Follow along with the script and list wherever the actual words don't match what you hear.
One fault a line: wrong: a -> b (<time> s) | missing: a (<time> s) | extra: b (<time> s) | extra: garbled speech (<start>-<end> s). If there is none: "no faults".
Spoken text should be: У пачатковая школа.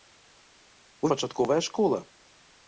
no faults